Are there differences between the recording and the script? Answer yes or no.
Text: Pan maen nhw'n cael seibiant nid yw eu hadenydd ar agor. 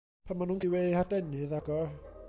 yes